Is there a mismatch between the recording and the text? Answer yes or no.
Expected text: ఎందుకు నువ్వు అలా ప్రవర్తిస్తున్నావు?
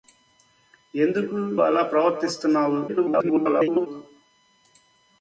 yes